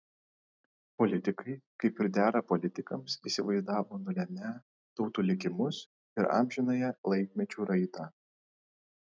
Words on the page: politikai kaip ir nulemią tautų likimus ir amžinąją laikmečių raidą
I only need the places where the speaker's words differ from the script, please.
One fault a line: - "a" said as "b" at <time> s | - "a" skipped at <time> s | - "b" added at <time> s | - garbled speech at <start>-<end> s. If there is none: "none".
- "dera politikams įsivaizdavo" added at 2.2 s